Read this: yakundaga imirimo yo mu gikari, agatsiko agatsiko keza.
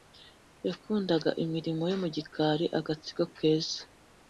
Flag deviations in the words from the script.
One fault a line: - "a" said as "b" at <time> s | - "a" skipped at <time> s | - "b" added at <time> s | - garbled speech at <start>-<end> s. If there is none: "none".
- "agatsiko" skipped at 3.2 s